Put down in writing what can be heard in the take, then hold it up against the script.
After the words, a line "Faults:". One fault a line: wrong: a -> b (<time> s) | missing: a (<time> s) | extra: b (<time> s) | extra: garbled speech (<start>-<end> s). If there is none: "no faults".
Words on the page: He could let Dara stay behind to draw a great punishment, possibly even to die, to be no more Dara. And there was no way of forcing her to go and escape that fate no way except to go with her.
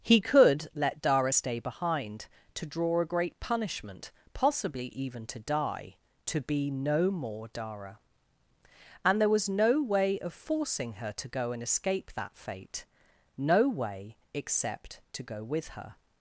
He could let Dara stay behind to draw a great punishment, possibly even to die, to be no more Dara. And there was no way of forcing her to go and escape that fate no way except to go with her.
Faults:
no faults